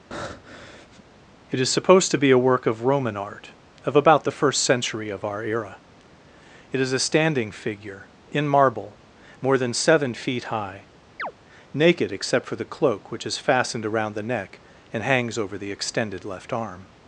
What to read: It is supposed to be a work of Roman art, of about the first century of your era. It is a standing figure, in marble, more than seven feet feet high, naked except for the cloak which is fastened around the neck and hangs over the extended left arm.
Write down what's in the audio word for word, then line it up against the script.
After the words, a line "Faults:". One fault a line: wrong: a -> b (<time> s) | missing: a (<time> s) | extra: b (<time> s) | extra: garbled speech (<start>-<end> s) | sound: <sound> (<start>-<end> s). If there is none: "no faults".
It is supposed to be a work of Roman art, of about the first century of our era. It is a standing figure, in marble, more than seven feet high, naked except for the cloak which is fastened around the neck and hangs over the extended left arm.
Faults:
sound: breath (0.1-1.0 s)
wrong: your -> our (5.2 s)
missing: feet (10.5 s)
sound: chirp (11.2-11.3 s)